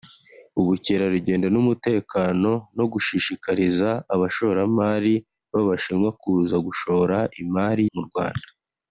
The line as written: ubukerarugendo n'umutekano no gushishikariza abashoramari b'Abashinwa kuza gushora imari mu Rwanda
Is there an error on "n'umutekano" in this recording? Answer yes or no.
no